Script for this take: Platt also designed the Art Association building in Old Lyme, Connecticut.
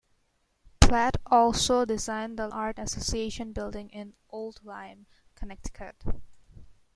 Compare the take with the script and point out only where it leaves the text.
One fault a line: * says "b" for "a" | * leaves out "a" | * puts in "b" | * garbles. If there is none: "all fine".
all fine